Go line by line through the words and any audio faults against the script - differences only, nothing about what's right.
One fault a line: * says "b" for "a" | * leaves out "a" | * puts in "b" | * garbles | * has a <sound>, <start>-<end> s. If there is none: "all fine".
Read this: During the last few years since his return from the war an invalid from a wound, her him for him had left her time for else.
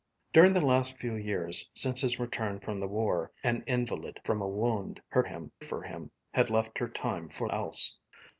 all fine